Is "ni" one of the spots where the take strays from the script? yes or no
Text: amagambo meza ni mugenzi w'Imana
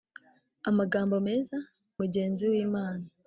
yes